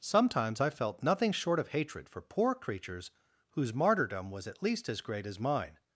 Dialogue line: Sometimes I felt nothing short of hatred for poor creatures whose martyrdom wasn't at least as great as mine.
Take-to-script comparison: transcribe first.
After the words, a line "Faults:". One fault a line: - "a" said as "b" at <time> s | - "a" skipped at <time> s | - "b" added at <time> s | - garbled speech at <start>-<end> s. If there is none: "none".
Sometimes I felt nothing short of hatred for poor creatures whose martyrdom was at least as great as mine.
Faults:
- "wasn't" said as "was" at 4.3 s